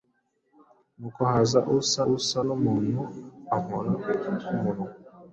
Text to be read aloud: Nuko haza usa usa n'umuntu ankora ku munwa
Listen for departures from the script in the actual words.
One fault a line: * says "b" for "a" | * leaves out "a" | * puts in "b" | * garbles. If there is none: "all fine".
all fine